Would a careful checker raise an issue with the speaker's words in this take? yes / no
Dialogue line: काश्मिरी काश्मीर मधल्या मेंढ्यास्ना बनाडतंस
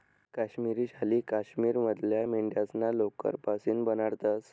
yes